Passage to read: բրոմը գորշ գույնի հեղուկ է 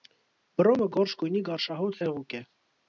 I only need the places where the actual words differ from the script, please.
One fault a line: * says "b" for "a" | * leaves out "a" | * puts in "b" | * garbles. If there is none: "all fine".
* puts in "գարշահոտ"